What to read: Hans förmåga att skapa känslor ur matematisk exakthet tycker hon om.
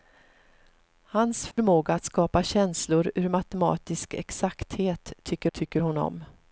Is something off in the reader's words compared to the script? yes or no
yes